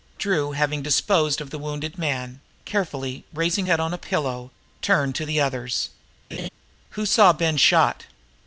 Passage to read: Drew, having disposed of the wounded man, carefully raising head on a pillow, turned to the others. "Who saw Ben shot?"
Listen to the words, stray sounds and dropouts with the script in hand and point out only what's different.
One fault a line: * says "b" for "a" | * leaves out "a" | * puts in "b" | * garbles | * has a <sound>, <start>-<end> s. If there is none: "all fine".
* has a laugh, 6.3-6.5 s